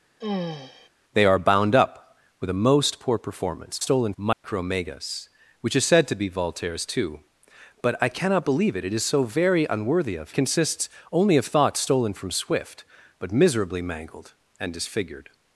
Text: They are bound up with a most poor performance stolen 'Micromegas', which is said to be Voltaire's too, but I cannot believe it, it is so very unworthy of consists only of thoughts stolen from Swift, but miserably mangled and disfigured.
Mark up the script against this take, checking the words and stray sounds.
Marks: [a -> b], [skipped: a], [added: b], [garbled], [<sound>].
[sigh] They are bound up with a most poor performance stolen 'Micromegas', [dropout] which is said to be Voltaire's too, but I cannot believe it, it is so very unworthy of consists only of thoughts stolen from Swift, but miserably mangled and disfigured.